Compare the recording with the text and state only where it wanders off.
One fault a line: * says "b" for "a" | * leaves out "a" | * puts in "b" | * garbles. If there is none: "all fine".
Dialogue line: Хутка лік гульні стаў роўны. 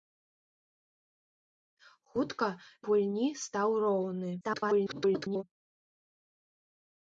* leaves out "лік"
* garbles